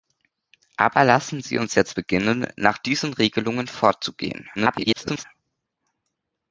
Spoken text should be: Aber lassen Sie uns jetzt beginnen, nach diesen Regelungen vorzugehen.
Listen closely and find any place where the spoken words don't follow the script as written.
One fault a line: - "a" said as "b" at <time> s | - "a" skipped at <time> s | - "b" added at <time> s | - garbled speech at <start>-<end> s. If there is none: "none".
- garbled speech at 4.6-5.2 s